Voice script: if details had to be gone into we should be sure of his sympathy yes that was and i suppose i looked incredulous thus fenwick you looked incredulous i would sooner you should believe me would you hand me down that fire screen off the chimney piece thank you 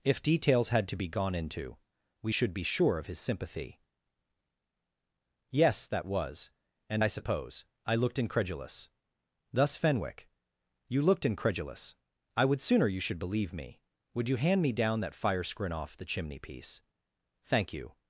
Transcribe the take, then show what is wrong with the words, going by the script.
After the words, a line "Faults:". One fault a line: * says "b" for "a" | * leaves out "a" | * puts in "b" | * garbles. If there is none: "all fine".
if details had to be gone into we should be sure of his sympathy yes that was and i suppose i looked incredulous thus fenwick you looked incredulous i would sooner you should believe me would you hand me down that fire screen off the chimney piece thank you
Faults:
all fine